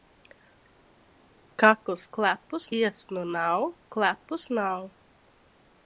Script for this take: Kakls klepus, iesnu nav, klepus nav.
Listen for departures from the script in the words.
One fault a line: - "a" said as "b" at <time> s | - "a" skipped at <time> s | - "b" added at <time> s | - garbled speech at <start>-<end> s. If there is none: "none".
none